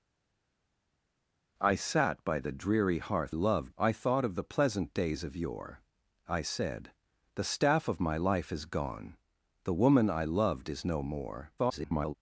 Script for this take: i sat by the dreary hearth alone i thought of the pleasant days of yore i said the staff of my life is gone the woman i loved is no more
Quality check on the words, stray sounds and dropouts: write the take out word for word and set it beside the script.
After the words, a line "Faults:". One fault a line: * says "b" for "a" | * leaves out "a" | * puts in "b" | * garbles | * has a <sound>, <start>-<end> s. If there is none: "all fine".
i sat by the dreary hearth loved i thought of the pleasant days of yore i said the staff of my life is gone the woman i loved is no more [garbled]
Faults:
* says "loved" for "alone"
* garbles